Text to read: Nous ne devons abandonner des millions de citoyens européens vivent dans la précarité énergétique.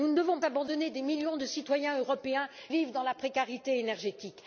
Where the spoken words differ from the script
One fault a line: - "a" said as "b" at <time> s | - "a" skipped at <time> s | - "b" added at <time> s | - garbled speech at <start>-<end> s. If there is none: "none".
none